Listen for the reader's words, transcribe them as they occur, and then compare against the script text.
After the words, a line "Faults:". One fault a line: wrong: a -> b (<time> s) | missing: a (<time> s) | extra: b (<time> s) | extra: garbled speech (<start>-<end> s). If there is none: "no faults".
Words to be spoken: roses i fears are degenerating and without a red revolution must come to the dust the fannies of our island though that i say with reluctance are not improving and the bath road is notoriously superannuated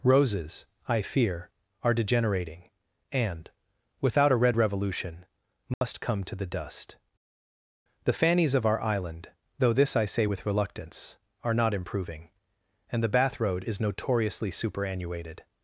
roses i fear are degenerating and without a red revolution must come to the dust the fannies of our island though this i say with reluctance are not improving and the bath road is notoriously superannuated
Faults:
wrong: fears -> fear (1.0 s)
wrong: that -> this (9.7 s)